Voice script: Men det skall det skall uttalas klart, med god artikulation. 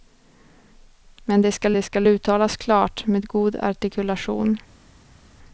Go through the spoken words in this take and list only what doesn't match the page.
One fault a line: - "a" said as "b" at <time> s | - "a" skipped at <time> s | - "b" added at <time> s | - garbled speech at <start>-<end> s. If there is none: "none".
none